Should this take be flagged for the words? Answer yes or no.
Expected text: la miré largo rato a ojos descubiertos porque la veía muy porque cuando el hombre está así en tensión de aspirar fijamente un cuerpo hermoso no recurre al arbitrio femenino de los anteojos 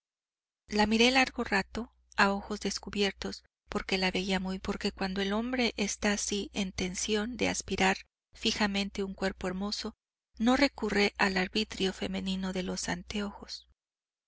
no